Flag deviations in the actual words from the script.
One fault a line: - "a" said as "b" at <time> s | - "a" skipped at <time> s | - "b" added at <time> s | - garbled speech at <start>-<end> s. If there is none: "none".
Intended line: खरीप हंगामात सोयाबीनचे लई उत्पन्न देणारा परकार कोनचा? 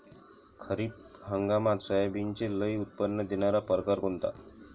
none